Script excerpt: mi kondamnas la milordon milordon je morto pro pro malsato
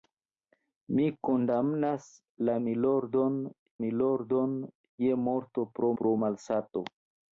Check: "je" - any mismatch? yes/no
no